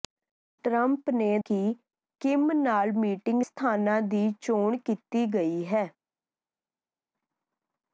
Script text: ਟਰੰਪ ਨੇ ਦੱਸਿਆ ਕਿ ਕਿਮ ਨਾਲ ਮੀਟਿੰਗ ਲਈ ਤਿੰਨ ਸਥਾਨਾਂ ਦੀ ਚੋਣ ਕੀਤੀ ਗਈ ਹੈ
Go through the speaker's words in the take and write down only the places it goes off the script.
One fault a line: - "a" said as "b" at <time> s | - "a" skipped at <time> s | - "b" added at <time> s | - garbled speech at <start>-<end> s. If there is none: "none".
- "ਦੱਸਿਆ" skipped at 1.4 s
- "ਲਈ ਤਿੰਨ" skipped at 3.4 s